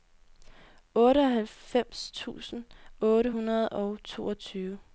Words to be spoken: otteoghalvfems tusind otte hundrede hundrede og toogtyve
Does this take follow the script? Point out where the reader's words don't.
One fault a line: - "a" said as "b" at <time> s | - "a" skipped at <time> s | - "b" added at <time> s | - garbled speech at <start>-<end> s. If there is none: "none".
- "hundrede" skipped at 3.7 s